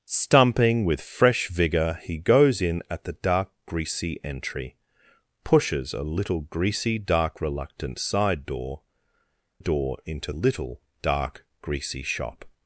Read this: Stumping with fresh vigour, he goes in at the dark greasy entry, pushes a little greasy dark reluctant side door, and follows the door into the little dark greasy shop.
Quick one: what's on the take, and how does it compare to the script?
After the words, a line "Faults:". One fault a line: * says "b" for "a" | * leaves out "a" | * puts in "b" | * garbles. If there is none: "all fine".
Stumping with fresh vigour, he goes in at the dark greasy entry, pushes a little greasy dark reluctant side door, door into little dark greasy shop.
Faults:
* leaves out "and follows the"
* leaves out "the"